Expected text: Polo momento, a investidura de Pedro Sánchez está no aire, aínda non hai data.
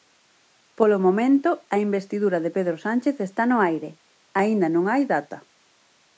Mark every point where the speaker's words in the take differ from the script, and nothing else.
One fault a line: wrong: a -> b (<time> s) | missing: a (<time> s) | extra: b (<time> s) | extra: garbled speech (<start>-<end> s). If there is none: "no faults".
no faults